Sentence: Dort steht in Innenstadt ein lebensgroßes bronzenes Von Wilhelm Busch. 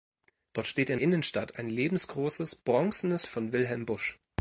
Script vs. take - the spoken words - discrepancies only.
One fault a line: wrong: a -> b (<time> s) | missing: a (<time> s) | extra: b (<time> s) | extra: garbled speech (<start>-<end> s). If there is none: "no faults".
no faults